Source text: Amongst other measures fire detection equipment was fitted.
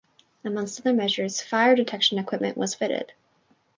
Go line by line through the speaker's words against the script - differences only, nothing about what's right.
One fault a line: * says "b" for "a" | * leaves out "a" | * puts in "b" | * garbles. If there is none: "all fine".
all fine